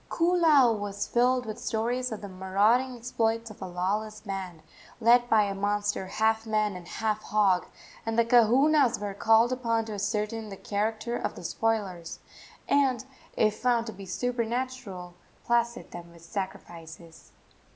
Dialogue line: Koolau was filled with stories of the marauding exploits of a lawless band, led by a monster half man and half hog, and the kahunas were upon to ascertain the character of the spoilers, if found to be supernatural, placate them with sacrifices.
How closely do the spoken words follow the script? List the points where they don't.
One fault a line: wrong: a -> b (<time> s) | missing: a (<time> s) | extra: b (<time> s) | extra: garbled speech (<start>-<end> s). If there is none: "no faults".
extra: called (9.1 s)
extra: and (12.7 s)